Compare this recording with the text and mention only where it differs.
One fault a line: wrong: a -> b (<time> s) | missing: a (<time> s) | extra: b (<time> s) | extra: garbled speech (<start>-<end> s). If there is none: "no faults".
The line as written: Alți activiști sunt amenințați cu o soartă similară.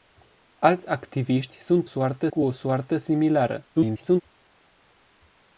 wrong: amenințați -> soartă (1.8 s)
extra: garbled speech (3.7-4.2 s)